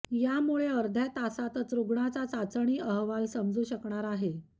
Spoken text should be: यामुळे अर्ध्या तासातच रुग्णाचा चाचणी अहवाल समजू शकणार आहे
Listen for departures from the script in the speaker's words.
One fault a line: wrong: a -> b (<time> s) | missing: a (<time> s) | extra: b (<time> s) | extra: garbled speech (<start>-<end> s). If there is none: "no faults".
no faults